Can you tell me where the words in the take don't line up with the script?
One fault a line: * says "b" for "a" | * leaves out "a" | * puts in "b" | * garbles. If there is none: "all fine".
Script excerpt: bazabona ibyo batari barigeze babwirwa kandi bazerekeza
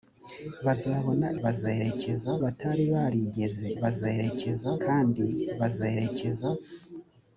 * says "bazerekeza" for "ibyo"
* says "bazerekeza" for "babwirwa"